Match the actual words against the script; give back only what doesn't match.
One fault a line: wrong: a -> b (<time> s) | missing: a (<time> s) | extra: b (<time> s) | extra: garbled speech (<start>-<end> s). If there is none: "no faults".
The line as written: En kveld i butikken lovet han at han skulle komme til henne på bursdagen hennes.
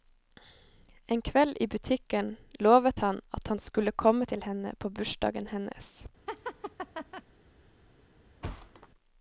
no faults